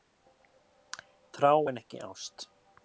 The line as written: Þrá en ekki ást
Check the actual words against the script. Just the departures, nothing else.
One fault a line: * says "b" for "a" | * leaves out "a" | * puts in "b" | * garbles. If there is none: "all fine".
all fine